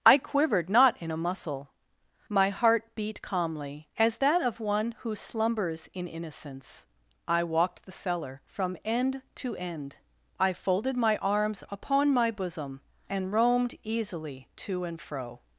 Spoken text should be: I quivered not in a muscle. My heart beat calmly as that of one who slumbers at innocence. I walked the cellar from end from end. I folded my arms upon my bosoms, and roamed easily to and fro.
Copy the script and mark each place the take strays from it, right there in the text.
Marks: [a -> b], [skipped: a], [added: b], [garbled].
I quivered not in a muscle. My heart beat calmly as that of one who slumbers [at -> in] innocence. I walked the cellar from end [from -> to] end. I folded my arms upon my [bosoms, -> bosom] and roamed easily to and fro.